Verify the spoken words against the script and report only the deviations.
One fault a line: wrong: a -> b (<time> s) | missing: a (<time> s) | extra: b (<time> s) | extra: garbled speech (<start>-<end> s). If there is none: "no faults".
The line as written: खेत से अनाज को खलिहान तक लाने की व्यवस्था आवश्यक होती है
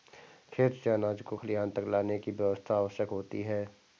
no faults